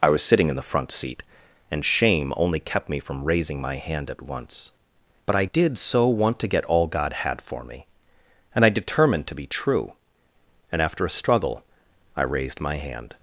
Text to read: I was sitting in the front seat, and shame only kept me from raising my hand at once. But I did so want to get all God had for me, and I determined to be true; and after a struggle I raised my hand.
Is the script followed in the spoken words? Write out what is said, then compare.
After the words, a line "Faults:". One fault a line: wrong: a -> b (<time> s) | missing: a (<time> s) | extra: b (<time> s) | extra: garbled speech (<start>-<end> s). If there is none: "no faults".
I was sitting in the front seat, and shame only kept me from raising my hand at once. But I did so want to get all God had for me, and I determined to be true; and after a struggle I raised my hand.
Faults:
no faults